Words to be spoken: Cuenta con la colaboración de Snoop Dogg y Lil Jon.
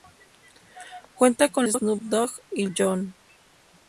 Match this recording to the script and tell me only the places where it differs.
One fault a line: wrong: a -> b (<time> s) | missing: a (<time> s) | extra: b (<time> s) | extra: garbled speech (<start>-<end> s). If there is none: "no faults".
missing: la colaboración (1.7 s)
missing: Lil (2.7 s)